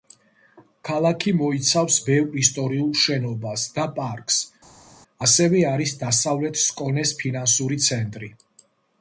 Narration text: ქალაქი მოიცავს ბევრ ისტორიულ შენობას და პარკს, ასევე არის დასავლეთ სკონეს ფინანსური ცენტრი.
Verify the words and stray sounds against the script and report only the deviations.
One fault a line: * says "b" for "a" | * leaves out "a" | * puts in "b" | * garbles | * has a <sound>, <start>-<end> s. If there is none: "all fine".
all fine